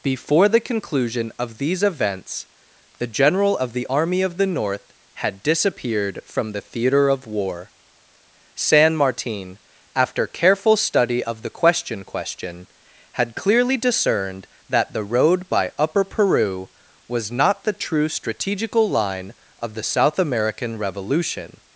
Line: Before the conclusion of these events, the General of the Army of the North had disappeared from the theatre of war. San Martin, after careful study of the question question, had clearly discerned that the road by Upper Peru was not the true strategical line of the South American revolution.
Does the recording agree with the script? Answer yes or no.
yes